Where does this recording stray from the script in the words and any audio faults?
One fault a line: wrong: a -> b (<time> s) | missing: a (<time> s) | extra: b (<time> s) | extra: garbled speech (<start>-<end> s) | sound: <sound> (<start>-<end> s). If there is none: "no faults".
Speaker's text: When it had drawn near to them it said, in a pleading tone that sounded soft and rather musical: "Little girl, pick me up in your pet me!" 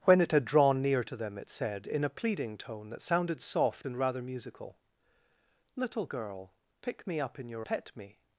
no faults